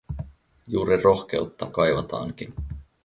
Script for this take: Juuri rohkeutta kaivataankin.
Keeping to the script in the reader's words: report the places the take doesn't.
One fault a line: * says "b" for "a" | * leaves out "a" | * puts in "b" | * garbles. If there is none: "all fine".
all fine